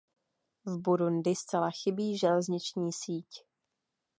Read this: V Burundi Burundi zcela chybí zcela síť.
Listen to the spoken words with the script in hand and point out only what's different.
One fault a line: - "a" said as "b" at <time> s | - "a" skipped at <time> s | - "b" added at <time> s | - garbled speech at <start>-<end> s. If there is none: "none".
- "Burundi" skipped at 1.4 s
- "zcela" said as "železniční" at 2.2 s